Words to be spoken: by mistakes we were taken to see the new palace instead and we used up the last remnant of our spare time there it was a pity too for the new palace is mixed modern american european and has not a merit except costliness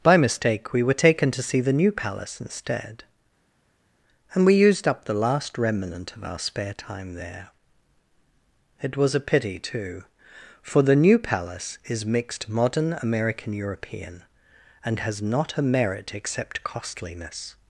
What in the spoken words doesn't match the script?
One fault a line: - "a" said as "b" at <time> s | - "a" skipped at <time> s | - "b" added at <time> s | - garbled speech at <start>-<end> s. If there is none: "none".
- "mistakes" said as "mistake" at 0.2 s